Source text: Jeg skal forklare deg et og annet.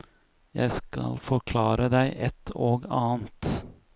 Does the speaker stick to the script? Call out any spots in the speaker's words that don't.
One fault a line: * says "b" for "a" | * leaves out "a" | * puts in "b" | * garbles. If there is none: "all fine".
all fine